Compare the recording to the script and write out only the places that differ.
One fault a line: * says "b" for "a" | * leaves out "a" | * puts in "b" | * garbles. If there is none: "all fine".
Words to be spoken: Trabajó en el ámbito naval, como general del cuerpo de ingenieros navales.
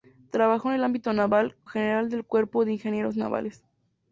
* leaves out "como"